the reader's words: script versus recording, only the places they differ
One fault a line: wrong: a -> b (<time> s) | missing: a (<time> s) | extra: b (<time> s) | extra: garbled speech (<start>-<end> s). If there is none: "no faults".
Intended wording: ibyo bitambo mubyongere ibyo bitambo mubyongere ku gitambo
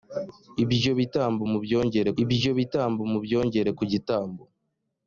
no faults